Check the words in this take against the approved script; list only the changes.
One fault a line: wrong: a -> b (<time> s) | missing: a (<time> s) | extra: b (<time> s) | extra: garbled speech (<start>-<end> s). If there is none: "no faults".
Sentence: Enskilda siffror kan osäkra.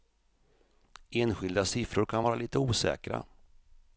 extra: vara lite (2.2 s)